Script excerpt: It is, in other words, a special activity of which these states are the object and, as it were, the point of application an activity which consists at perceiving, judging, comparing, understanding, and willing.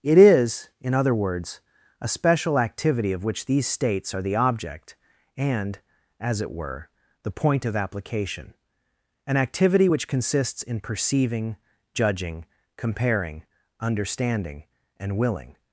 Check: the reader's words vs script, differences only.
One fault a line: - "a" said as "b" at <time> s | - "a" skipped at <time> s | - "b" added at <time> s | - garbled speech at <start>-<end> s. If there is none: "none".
- "at" said as "in" at 10.6 s